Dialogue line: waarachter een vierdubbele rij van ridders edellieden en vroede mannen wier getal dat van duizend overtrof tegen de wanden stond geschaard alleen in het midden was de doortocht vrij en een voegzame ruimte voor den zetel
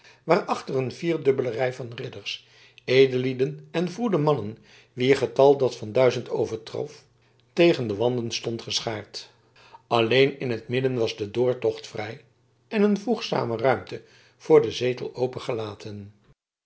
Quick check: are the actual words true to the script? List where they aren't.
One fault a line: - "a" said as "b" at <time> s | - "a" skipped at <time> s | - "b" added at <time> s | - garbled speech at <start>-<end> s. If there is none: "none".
none